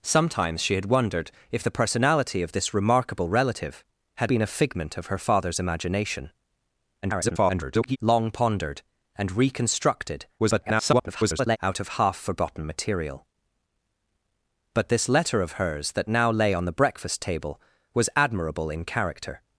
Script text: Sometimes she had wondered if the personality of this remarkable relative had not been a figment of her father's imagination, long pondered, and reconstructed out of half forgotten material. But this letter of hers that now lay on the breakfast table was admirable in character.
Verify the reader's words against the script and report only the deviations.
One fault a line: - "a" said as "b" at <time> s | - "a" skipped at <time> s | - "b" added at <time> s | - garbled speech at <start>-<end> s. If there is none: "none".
- "not" skipped at 4.3 s
- garbled speech at 7.0-8.0 s
- garbled speech at 10.4-11.6 s